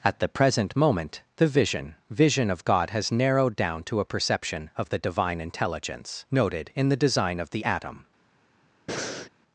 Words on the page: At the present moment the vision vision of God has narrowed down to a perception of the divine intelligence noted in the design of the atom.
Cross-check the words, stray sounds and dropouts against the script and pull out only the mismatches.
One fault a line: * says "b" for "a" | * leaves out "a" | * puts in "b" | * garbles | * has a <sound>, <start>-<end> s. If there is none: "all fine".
* has a breath, 8.9-9.3 s